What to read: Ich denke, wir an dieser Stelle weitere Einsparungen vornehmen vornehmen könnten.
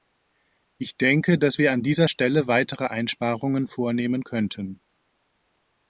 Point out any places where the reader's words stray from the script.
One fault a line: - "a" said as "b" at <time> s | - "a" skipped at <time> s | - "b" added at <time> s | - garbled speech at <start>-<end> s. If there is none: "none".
- "dass" added at 1.4 s
- "vornehmen" skipped at 4.2 s